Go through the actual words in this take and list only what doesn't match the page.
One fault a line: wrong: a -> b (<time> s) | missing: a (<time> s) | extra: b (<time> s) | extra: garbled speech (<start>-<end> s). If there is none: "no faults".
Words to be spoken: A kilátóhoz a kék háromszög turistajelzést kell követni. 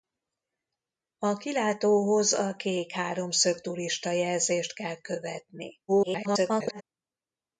extra: garbled speech (5.9-6.8 s)